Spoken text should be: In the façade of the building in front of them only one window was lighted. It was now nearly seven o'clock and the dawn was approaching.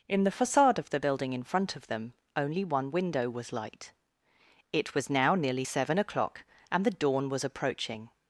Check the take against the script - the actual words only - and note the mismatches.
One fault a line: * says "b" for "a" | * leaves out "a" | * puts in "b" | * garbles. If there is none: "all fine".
* says "light" for "lighted"